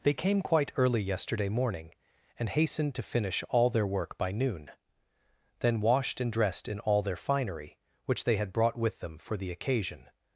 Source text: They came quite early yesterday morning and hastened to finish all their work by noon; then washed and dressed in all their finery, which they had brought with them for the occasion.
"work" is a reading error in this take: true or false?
false